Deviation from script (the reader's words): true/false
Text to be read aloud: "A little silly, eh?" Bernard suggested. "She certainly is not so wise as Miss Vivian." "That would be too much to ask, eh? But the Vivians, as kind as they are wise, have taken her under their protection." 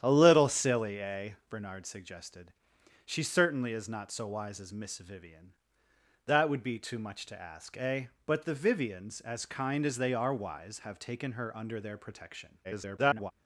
true